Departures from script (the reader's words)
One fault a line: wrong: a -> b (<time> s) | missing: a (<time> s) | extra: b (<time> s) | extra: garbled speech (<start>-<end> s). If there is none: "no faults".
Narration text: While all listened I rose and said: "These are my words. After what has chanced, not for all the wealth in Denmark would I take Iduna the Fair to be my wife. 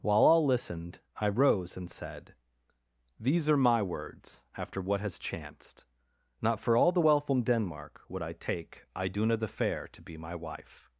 no faults